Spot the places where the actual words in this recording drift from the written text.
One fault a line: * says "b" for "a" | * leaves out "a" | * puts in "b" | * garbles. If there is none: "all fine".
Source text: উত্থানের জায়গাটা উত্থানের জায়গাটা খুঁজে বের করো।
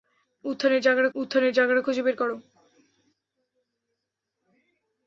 all fine